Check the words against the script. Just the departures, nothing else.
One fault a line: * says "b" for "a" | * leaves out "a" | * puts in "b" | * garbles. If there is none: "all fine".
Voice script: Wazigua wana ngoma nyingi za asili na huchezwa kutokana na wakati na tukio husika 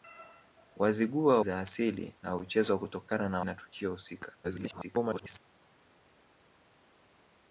* leaves out "wana ngoma nyingi"
* leaves out "wakati"
* garbles